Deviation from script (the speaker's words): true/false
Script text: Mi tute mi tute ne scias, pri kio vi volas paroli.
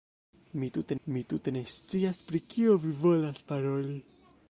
false